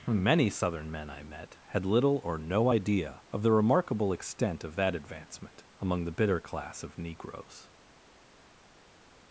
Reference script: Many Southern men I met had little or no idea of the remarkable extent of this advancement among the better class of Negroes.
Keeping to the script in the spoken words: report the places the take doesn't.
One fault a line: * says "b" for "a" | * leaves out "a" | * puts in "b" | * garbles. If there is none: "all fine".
* says "that" for "this"
* says "bitter" for "better"